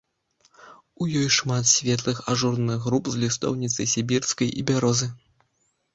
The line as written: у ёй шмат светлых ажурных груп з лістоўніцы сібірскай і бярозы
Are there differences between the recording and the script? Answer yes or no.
no